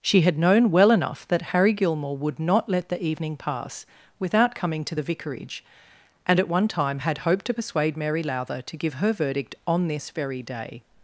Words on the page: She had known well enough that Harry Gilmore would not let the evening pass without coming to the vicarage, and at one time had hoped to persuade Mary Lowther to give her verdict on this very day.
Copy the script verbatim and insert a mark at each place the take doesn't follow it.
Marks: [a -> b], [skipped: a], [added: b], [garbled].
She had known well enough that Harry Gilmore would not let the evening pass without coming to the vicarage, and at one time had hoped to persuade Mary Lowther to give her verdict on this very day.